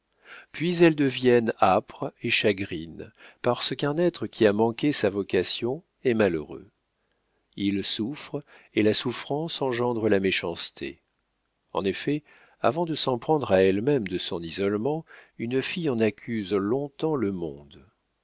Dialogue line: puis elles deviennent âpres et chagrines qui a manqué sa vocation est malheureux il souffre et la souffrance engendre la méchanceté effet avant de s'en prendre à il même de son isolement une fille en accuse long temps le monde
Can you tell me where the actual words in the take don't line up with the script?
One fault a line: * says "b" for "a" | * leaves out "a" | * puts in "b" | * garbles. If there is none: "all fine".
* puts in "parce qu'un être"
* puts in "en"
* says "elle" for "il"